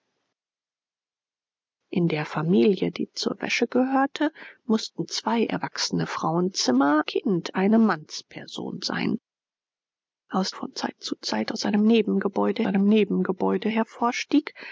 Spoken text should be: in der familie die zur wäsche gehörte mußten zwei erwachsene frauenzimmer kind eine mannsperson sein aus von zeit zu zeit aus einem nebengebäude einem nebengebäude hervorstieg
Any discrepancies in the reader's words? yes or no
no